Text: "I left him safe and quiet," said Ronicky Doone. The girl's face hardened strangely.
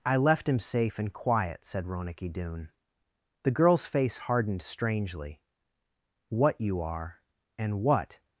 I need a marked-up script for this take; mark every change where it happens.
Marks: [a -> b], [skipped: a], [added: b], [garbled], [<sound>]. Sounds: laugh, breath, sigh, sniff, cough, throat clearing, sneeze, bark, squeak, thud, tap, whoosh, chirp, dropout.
"I left him safe and quiet," said Ronicky Doone. The girl's face hardened strangely. [added: What you are and what]